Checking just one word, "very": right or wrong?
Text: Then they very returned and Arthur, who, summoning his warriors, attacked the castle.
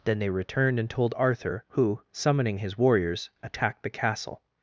wrong